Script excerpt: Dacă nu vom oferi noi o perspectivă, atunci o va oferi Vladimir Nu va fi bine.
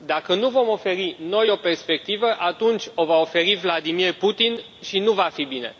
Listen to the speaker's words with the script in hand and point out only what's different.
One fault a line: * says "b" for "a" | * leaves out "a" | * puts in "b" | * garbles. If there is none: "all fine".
* puts in "Putin și"